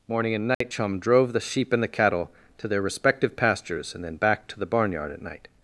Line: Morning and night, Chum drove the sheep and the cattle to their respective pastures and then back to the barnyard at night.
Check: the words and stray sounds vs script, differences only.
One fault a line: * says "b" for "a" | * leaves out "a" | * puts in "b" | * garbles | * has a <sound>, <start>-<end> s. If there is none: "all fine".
* has a dropout, 0.5-0.6 s